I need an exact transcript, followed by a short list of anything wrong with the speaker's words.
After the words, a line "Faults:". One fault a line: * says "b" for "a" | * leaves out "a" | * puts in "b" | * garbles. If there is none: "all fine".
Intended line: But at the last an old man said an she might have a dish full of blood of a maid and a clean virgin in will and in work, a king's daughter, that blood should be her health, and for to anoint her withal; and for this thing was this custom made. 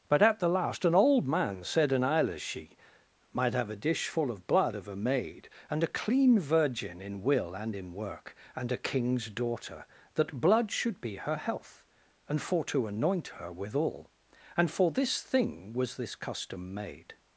But at the last an old man said an she might have a dish full of blood of a maid and a clean virgin in will and in work, and a king's daughter, that blood should be her health, and for to anoint her withal; and for this thing was this custom made.
Faults:
* puts in "and"